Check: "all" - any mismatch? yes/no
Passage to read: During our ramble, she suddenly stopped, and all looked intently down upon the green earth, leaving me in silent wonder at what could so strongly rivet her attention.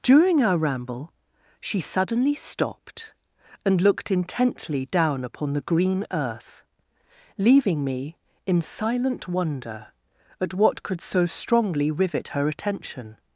yes